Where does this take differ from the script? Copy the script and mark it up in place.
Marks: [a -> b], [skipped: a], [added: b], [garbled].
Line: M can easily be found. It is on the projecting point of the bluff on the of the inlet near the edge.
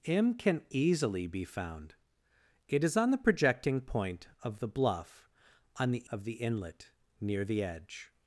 M can easily be found. It is on the projecting point of the bluff on the of the inlet near the edge.